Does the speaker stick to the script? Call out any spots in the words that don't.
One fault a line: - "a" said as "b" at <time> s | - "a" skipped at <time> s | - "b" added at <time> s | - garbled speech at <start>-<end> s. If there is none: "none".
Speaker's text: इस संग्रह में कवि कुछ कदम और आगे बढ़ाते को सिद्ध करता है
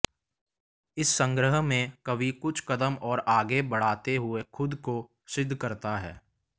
- "हुए खुद" added at 4.1 s